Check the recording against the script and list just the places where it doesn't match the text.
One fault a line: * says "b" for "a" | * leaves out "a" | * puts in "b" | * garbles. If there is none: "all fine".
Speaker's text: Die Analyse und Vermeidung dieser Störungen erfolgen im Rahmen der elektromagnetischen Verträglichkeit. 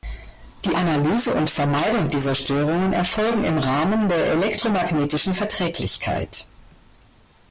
all fine